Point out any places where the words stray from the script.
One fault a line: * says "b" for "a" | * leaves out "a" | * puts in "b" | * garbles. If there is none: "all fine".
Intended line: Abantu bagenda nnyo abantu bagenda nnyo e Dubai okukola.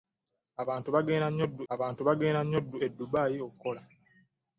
all fine